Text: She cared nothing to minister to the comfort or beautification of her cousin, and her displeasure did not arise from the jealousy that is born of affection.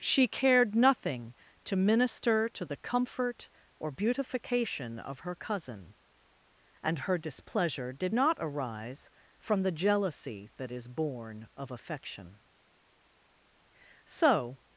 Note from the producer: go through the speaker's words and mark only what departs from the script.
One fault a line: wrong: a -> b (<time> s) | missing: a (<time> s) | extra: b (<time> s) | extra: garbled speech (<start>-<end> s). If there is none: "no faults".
extra: So (14.1 s)